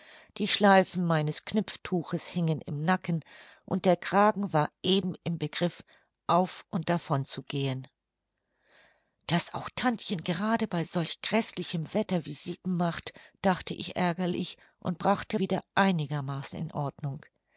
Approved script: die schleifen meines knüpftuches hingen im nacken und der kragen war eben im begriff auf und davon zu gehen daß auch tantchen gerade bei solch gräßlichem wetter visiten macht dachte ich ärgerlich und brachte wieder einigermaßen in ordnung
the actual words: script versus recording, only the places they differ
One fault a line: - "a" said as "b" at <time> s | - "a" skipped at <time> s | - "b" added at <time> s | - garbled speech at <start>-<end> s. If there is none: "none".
none